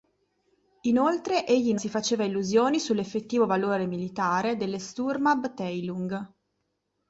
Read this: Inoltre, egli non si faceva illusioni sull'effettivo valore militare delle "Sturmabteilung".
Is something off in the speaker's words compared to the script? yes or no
yes